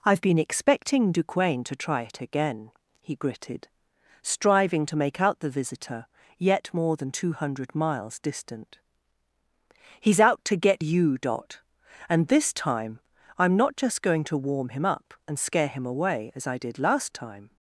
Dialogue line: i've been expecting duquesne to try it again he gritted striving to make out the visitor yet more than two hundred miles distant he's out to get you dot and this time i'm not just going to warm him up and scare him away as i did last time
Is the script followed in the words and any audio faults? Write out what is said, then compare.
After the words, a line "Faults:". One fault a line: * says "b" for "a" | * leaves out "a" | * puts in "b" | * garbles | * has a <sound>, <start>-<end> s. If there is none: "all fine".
i've been expecting duquesne to try it again he gritted striving to make out the visitor yet more than two hundred miles distant he's out to get you dot and this time i'm not just going to warm him up and scare him away as i did last time
Faults:
all fine